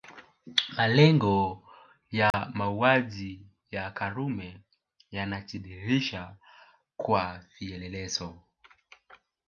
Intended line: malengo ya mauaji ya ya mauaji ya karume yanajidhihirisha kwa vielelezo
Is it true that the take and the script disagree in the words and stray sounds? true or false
true